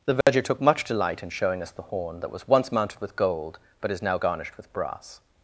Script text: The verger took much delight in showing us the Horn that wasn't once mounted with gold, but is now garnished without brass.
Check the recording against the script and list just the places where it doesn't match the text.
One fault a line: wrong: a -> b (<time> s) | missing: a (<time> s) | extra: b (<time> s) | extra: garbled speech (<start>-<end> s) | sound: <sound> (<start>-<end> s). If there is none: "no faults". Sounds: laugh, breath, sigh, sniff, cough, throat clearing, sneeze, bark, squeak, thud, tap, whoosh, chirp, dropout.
sound: dropout (0.2-0.3 s)
wrong: wasn't -> was (2.3 s)
wrong: without -> with (4.6 s)